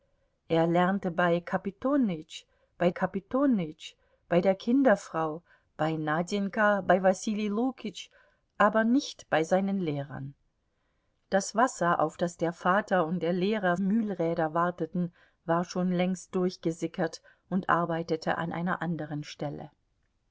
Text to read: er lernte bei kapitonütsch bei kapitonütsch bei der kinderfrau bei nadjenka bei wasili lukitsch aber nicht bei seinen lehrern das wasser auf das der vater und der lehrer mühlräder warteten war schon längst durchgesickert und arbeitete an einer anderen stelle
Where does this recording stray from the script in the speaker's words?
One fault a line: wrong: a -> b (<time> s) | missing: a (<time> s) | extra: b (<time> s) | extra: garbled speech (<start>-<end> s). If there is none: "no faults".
no faults